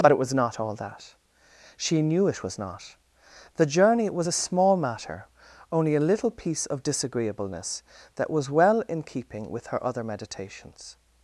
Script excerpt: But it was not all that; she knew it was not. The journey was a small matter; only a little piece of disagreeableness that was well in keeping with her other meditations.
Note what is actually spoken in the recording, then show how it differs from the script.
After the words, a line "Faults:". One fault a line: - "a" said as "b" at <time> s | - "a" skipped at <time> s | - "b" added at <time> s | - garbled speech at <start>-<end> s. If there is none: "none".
But it was not all that; she knew it was not. The journey was a small matter; only a little piece of disagreeableness that was well in keeping with her other meditations.
Faults:
none